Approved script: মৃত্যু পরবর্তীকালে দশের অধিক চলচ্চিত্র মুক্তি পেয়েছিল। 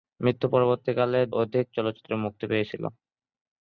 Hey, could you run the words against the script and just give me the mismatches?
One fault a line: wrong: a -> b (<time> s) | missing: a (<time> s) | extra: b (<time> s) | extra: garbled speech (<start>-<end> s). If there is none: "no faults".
missing: দশের (1.2 s)